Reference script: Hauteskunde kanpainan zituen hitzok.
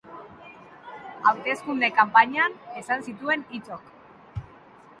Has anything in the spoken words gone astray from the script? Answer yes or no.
yes